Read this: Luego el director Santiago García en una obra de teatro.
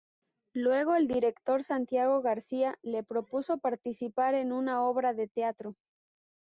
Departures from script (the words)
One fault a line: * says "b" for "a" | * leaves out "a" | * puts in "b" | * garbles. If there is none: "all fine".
* puts in "le propuso participar"